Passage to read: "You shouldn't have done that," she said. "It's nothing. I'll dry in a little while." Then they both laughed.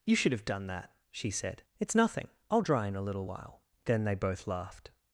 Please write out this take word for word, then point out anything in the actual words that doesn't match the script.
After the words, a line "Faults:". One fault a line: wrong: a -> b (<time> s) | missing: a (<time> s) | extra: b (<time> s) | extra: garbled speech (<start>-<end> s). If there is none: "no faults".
"You should have done that," she said. "It's nothing. I'll dry in a little while." Then they both laughed.
Faults:
wrong: shouldn't -> should (0.1 s)